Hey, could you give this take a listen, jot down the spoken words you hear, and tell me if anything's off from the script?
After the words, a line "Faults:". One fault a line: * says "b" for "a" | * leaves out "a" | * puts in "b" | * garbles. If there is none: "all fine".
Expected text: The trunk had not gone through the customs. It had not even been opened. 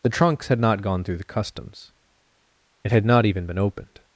The trunks had not gone through the customs. It had not even been opened.
Faults:
* says "trunks" for "trunk"